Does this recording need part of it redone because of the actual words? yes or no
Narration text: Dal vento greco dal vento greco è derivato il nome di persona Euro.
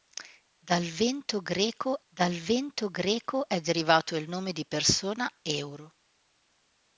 no